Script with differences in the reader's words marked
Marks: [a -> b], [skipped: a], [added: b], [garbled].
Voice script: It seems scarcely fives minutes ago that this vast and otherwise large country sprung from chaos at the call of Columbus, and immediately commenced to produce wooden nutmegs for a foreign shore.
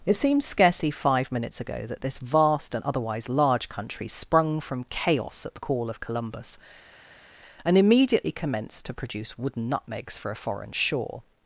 It seems scarcely [fives -> five] minutes ago that this vast and otherwise large country sprung from chaos at the call of Columbus, and immediately commenced to produce wooden nutmegs for a foreign shore.